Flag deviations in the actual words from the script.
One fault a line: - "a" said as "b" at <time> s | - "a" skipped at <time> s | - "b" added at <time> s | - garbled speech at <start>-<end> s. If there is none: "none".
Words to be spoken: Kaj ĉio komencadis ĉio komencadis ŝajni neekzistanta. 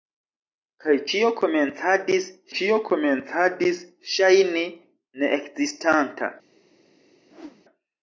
none